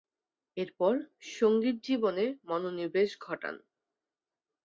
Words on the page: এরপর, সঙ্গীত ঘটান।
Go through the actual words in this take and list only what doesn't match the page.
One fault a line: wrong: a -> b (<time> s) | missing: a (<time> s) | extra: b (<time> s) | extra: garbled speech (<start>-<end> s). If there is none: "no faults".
extra: জীবনে মনোনিবেশ (1.8 s)